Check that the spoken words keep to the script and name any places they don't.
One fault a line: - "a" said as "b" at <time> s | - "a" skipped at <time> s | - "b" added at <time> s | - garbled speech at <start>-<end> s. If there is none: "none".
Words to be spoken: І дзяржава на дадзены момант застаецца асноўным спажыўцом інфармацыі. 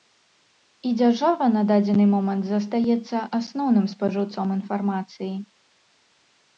none